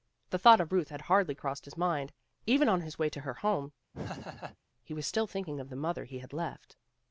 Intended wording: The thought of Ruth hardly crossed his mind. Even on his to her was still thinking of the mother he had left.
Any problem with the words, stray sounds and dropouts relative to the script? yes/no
yes